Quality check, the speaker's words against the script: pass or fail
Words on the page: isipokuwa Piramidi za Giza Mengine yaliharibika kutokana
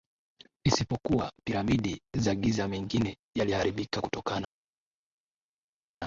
pass